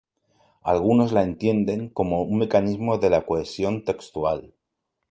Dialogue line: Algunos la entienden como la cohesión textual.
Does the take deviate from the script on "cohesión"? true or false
false